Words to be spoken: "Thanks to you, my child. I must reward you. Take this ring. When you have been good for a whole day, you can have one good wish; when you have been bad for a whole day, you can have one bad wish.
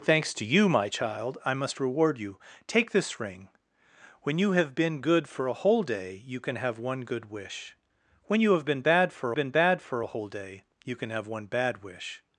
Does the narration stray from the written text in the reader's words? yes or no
yes